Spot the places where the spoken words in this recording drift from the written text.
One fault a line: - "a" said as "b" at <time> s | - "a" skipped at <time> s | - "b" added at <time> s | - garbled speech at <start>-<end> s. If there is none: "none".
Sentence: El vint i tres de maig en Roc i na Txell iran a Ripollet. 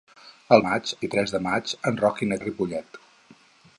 - "vint" said as "maig" at 0.7 s
- "Txell iran" skipped at 2.4 s